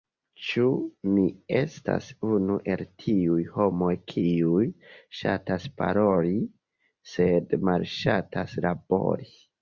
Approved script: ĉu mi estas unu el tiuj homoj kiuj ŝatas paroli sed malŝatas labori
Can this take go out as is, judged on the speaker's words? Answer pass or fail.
pass